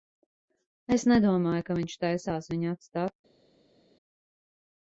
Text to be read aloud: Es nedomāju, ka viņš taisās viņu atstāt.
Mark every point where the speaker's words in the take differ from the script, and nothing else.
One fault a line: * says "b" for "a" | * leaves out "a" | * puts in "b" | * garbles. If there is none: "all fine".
all fine